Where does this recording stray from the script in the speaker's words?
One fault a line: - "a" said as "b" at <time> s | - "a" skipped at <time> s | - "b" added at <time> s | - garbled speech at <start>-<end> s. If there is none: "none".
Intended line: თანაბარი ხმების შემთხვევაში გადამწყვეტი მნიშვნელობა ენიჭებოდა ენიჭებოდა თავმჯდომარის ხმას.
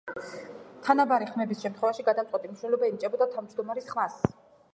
- "ენიჭებოდა" skipped at 3.3 s